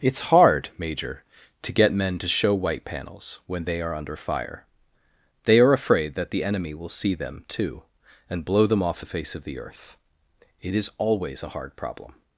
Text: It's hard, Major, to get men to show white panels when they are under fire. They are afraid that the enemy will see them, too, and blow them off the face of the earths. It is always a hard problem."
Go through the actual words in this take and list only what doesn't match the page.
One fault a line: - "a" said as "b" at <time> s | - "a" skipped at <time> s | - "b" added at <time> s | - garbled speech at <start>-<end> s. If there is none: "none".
- "earths" said as "earth" at 9.6 s